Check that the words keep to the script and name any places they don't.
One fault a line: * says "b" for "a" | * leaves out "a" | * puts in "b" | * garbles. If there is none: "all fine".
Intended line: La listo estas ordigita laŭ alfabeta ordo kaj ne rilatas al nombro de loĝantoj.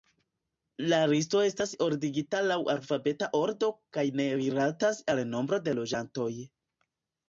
all fine